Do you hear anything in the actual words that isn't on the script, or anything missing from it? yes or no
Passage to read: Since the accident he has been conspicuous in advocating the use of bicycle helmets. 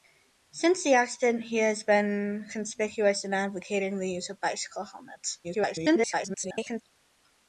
yes